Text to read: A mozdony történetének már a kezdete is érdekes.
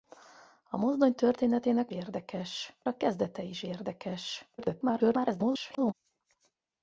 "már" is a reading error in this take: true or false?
true